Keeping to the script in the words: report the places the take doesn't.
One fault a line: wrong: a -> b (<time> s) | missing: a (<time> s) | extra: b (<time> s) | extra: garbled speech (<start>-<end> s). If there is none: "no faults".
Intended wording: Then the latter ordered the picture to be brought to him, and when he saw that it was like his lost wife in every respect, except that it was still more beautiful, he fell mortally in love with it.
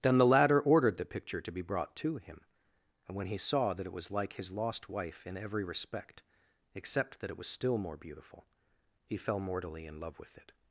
no faults